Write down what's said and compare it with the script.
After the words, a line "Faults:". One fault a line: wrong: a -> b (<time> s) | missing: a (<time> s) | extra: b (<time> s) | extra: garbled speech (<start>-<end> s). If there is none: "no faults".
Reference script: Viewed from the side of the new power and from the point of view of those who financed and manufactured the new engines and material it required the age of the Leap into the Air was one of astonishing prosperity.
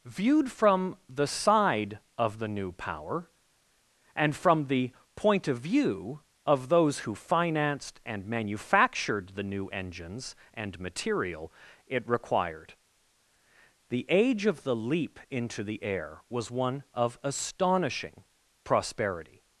Viewed from the side of the new power and from the point of view of those who financed and manufactured the new engines and material it required the age of the Leap into the Air was one of astonishing prosperity.
Faults:
no faults